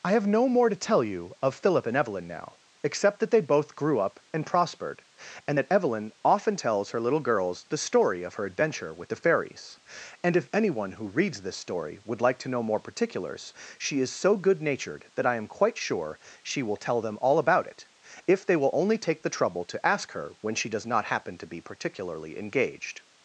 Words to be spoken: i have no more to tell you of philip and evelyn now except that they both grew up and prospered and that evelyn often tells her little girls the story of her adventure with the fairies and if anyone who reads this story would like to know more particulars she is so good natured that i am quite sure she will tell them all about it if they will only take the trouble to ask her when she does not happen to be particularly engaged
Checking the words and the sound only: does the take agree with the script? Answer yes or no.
yes